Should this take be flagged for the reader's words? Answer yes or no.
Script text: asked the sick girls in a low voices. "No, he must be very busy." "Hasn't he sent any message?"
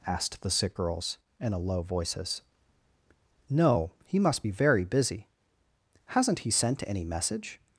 no